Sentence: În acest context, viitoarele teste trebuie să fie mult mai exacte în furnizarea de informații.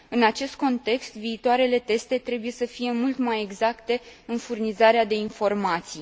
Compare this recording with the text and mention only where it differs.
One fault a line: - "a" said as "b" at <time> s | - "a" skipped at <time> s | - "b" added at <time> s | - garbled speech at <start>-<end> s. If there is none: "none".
none